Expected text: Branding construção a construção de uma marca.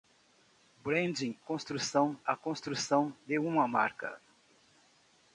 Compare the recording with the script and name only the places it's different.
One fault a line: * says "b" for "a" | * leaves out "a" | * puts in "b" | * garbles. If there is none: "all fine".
all fine